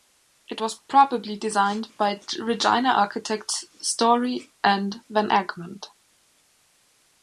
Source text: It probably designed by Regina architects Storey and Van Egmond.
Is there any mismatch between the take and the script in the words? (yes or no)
yes